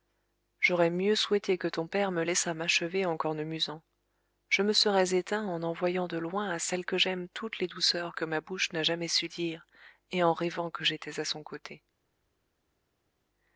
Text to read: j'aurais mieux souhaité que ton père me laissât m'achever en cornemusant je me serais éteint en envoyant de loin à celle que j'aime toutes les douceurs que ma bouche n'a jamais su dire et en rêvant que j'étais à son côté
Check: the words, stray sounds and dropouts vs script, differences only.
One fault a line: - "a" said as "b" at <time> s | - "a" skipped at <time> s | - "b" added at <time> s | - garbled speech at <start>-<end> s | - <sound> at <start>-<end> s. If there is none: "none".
none